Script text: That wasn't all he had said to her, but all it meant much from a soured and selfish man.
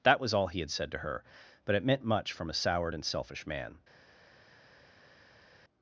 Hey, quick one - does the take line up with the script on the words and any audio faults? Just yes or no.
no